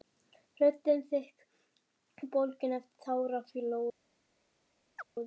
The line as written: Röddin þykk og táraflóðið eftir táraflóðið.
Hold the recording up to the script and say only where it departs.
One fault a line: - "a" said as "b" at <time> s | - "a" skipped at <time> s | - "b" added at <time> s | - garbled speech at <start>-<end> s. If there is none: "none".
- "táraflóðið" said as "bólgin" at 2.4 s